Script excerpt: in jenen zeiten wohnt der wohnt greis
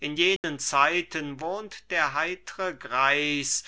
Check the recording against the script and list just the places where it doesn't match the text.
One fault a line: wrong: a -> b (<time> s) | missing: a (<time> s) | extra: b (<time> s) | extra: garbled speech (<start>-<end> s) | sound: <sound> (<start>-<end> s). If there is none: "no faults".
sound: dropout (0.4-0.4 s)
wrong: wohnt -> heitre (2.1 s)